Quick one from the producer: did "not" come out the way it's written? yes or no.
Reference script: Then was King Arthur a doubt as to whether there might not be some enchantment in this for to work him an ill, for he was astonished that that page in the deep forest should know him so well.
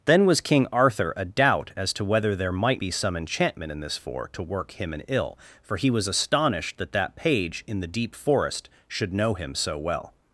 no